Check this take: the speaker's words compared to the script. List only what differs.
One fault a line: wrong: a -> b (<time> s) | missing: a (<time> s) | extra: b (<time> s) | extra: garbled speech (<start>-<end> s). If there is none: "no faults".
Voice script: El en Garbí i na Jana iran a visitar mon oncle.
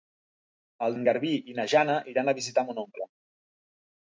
no faults